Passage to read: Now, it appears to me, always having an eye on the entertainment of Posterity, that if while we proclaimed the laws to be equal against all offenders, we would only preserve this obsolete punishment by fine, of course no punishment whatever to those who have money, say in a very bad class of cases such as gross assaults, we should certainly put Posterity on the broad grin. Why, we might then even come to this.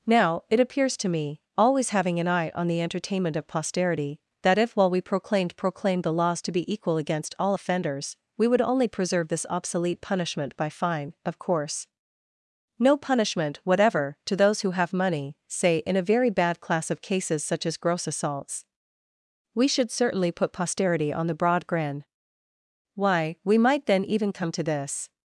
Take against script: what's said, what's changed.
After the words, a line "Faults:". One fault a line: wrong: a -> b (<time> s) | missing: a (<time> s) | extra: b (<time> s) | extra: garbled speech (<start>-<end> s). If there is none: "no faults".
Now, it appears to me, always having an eye on the entertainment of Posterity, that if while we proclaimed proclaimed the laws to be equal against all offenders, we would only preserve this obsolete punishment by fine, of course no punishment whatever to those who have money, say in a very bad class of cases such as gross assaults, we should certainly put Posterity on the broad grin. Why, we might then even come to this.
Faults:
extra: proclaimed (5.5 s)